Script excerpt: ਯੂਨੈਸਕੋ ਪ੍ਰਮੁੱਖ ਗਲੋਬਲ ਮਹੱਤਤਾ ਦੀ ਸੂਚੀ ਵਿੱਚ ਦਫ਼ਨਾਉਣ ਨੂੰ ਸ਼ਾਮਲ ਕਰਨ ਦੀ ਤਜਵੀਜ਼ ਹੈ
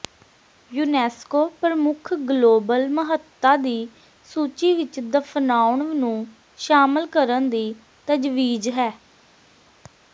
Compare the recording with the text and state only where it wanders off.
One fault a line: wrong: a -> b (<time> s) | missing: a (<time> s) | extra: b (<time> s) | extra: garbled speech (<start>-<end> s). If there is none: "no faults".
no faults